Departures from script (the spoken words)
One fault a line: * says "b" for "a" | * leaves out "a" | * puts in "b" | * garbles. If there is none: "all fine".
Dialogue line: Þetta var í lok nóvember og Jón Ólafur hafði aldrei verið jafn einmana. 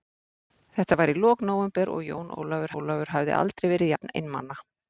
* puts in "Ólafur"